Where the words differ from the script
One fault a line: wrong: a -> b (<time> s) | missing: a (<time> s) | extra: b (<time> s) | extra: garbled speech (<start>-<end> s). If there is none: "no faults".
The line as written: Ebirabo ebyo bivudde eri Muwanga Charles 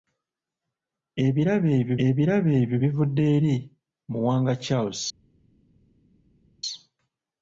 extra: ebirabo ebyo (2.1 s)